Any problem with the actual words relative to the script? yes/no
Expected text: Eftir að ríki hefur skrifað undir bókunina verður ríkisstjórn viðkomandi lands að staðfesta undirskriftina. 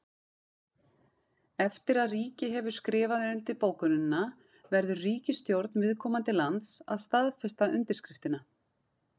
no